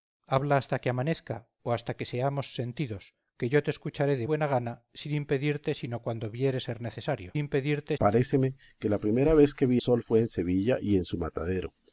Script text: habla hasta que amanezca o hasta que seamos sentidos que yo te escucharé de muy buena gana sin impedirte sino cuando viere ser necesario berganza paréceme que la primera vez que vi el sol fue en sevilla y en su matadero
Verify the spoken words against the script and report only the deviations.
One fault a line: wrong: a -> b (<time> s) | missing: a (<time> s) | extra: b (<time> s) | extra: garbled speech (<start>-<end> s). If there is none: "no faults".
missing: muy (4.3 s)
wrong: berganza -> impedirte (7.4 s)
missing: el (9.8 s)